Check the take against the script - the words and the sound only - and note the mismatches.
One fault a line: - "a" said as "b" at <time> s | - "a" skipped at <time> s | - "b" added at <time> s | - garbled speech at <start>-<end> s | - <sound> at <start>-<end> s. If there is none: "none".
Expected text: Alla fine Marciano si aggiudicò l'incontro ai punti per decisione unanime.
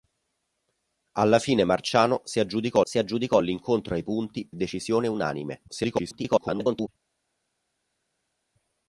- "si aggiudicò" added at 2.8 s
- "per" skipped at 4.5 s
- garbled speech at 5.7-6.9 s